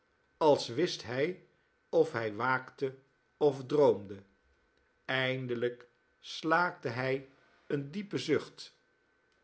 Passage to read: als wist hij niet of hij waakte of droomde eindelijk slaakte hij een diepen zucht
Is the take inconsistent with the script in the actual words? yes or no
yes